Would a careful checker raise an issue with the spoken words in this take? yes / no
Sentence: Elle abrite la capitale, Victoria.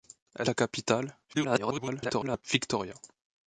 yes